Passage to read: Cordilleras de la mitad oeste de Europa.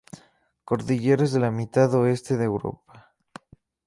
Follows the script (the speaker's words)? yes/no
yes